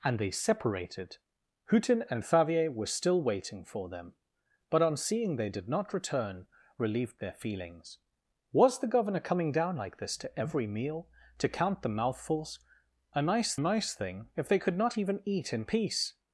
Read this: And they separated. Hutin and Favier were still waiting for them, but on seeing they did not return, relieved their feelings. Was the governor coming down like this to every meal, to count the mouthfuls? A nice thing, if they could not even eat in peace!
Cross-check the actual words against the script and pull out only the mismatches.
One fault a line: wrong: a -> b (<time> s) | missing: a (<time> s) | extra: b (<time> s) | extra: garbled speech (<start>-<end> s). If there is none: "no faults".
extra: nice (13.6 s)